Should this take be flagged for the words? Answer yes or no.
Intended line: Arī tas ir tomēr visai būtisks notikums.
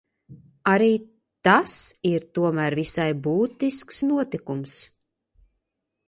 no